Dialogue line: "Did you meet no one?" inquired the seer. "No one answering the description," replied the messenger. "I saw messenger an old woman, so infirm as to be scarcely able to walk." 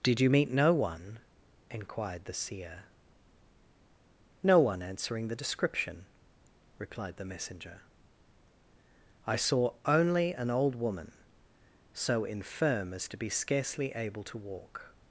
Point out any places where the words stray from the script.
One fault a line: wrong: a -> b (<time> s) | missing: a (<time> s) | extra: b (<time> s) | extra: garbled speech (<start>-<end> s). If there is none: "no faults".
wrong: messenger -> only (9.8 s)